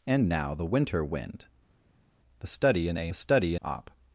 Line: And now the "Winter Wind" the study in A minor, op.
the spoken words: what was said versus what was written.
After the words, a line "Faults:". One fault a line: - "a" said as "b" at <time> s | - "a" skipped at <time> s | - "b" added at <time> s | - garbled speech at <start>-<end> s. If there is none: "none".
And now the "Winter Wind" the study in A study, op.
Faults:
- "minor" said as "study" at 3.1 s